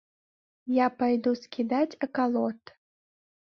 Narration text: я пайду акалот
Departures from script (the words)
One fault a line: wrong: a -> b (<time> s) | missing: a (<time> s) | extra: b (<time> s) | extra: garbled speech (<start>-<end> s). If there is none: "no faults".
extra: скідаць (1.4 s)